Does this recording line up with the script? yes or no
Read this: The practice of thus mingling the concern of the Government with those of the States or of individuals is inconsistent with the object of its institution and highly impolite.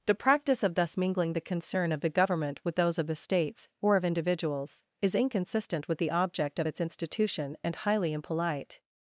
yes